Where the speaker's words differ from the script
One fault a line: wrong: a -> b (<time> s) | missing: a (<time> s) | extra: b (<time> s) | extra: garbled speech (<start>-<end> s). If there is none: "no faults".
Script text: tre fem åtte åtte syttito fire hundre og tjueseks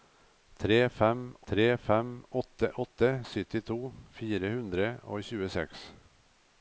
extra: tre fem (1.5 s)